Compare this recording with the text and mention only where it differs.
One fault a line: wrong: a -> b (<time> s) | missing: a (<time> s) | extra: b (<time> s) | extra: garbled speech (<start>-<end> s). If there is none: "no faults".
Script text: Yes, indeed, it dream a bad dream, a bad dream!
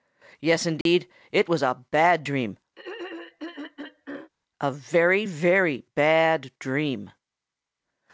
wrong: dream -> was (1.5 s)
extra: very very (4.7 s)